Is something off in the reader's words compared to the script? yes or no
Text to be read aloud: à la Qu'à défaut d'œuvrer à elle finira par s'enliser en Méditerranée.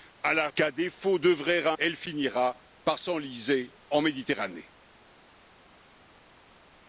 no